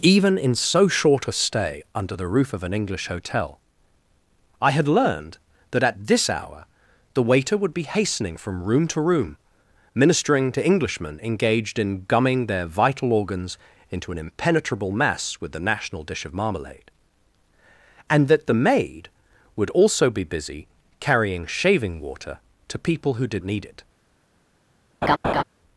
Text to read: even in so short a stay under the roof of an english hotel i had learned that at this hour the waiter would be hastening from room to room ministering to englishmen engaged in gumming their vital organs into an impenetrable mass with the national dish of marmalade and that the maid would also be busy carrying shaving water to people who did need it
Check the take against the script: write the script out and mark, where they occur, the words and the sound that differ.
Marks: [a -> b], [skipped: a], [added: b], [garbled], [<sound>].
even in so short a stay under the roof of an english hotel i had learned that at this hour the waiter would be hastening from room to room ministering to englishmen engaged in gumming their vital organs into an impenetrable mass with the national dish of marmalade and that the maid would also be busy carrying shaving water to people who did need it [laugh]